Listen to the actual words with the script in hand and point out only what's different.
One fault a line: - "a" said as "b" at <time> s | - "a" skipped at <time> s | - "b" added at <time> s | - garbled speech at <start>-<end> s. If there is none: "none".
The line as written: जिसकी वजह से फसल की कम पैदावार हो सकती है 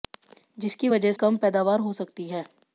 - "से फसल की" skipped at 1.1 s